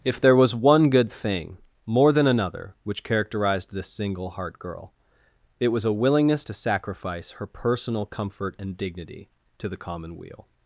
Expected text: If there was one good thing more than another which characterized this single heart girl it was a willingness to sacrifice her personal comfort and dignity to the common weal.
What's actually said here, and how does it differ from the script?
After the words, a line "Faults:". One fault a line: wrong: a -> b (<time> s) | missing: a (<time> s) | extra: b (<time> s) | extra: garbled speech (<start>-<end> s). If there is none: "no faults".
If there was one good thing more than another which characterized this single heart girl it was a willingness to sacrifice her personal comfort and dignity to the common weal.
Faults:
no faults